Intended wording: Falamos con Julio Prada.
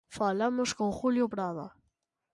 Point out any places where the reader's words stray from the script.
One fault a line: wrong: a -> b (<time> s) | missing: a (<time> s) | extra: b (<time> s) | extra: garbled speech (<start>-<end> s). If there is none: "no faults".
no faults